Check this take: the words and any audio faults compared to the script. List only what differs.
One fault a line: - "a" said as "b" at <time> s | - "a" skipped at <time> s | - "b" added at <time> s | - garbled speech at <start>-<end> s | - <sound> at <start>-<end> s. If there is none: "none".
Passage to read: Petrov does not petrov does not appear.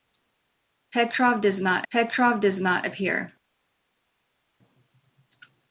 none